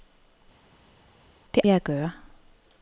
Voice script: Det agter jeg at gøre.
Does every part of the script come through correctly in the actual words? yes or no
no